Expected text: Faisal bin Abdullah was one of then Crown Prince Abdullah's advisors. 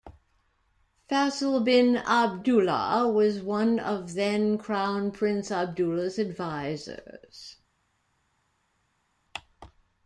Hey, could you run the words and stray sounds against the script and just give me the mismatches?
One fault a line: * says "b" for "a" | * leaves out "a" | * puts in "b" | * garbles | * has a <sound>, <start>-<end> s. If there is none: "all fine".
all fine